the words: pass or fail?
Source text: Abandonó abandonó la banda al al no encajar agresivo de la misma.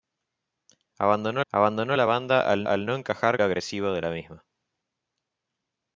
pass